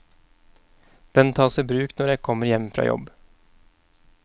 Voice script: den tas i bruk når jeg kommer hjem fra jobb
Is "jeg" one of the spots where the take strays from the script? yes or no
no